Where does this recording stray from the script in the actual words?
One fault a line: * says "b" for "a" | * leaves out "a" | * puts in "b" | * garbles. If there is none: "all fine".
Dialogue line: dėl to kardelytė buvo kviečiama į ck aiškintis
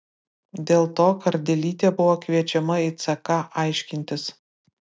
all fine